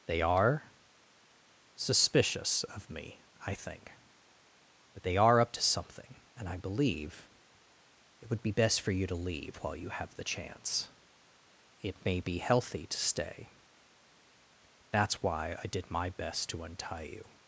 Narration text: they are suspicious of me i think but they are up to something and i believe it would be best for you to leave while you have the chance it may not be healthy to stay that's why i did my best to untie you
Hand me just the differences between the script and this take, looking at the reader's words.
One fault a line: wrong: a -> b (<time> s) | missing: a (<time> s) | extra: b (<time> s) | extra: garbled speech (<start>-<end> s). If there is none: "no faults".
missing: not (12.2 s)